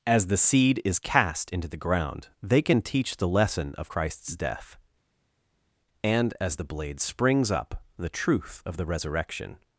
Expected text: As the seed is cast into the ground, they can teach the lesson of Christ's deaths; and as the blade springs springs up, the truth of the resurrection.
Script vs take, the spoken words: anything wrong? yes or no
yes